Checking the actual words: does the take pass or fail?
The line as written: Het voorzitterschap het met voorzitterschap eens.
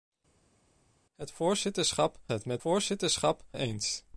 pass